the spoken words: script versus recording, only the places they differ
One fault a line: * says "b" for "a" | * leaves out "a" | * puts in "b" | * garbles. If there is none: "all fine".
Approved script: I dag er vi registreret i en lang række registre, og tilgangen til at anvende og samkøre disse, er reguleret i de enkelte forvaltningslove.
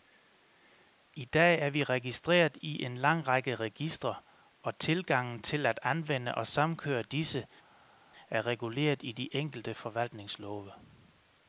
all fine